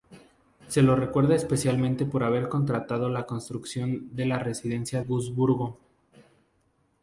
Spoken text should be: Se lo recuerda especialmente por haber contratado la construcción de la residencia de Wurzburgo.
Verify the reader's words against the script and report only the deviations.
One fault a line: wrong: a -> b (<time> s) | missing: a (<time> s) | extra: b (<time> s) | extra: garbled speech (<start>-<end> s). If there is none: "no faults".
missing: de (5.0 s)